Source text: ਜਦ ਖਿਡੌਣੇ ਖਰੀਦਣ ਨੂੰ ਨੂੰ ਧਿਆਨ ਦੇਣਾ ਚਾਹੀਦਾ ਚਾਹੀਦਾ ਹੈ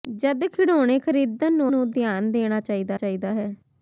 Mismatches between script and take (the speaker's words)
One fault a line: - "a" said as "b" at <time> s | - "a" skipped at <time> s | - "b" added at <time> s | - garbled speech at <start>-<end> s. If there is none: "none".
none